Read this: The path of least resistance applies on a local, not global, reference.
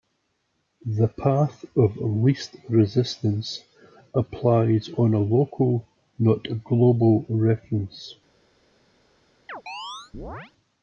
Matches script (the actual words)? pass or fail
pass